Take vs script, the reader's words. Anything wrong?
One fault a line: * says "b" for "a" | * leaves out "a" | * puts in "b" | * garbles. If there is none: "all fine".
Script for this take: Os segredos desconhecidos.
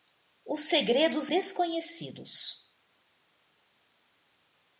all fine